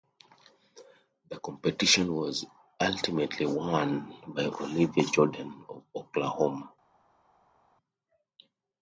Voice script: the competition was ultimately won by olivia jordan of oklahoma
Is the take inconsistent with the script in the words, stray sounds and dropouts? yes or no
no